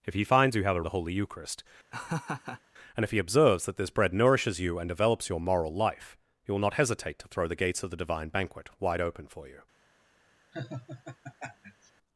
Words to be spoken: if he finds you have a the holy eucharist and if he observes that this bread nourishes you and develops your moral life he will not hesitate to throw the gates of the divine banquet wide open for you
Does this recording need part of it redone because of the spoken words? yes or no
no